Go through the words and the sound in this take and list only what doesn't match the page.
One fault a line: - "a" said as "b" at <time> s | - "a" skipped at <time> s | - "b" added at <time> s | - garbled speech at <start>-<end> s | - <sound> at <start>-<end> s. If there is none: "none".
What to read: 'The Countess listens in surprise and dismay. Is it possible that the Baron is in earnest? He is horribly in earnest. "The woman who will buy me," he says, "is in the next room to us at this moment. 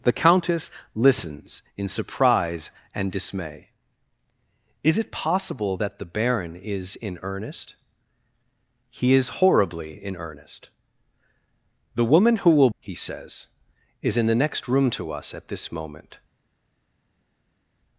- "buy me" skipped at 12.7 s